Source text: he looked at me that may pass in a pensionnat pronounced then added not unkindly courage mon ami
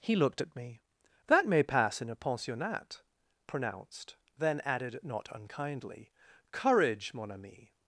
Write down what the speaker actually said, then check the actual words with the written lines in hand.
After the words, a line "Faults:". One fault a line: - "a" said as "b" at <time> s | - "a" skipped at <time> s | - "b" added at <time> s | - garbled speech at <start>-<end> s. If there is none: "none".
he looked at me that may pass in a pensionnat pronounced then added not unkindly courage mon ami
Faults:
none